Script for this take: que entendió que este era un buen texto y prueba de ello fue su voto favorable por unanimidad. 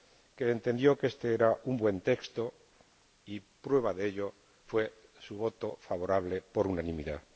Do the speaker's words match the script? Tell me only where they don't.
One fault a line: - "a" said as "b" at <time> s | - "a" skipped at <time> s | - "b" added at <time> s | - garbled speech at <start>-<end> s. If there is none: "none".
none